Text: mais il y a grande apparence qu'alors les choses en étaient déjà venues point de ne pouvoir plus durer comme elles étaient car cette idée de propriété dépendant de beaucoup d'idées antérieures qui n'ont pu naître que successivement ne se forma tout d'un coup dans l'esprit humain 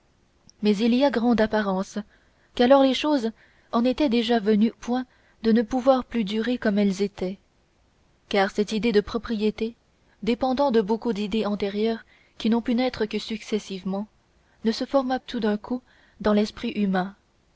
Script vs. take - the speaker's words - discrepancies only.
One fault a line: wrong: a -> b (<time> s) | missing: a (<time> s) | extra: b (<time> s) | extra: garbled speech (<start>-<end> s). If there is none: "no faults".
no faults